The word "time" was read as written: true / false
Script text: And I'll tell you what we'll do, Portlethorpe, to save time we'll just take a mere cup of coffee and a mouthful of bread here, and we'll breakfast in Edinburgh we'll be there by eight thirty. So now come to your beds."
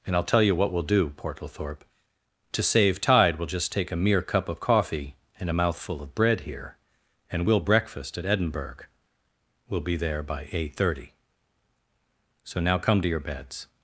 false